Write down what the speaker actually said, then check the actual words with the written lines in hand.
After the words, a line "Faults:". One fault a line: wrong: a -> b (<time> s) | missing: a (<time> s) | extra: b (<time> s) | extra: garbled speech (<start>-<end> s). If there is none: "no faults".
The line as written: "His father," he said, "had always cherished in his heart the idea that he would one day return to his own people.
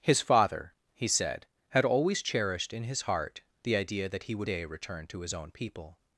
"His father," he said, "had always cherished in his heart the idea that he would day return to his own people.
Faults:
missing: one (4.5 s)